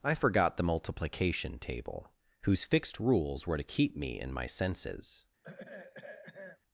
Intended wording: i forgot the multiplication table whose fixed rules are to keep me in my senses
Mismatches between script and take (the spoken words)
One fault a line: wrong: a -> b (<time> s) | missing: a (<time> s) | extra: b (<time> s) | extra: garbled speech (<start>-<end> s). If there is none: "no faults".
wrong: are -> were (3.5 s)